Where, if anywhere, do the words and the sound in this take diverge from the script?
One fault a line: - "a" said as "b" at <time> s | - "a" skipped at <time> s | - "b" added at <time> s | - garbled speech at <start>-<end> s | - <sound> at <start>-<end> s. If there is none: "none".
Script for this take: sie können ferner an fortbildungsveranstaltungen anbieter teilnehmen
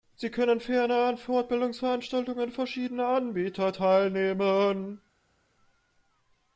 - "verschiedener" added at 2.5 s